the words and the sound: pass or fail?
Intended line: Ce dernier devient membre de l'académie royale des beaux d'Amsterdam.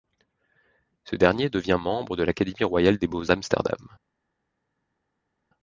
pass